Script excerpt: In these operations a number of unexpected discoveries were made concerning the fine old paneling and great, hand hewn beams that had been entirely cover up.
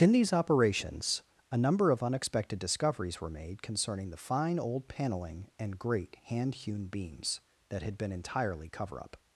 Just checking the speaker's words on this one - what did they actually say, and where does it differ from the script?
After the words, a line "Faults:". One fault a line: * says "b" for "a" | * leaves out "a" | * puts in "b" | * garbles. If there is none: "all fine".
In these operations a number of unexpected discoveries were made concerning the fine old paneling and great, hand hewn beams that had been entirely cover up.
Faults:
all fine